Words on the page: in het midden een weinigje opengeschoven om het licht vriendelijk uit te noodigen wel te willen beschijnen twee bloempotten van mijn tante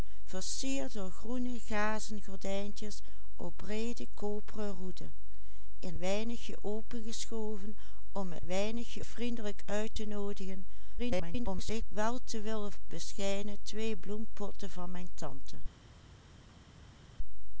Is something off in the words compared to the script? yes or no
yes